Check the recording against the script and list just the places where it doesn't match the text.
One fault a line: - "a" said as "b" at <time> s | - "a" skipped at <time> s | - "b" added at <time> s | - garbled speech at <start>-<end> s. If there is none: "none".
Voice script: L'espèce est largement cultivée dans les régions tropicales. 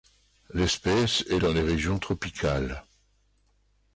- "largement cultivée" skipped at 1.4 s